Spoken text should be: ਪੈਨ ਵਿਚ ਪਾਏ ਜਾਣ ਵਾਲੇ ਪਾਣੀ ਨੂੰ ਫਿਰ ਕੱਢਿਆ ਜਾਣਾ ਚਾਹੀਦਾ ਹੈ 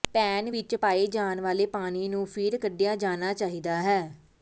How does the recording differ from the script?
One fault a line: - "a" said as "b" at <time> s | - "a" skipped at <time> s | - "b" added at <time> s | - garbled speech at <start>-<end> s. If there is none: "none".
none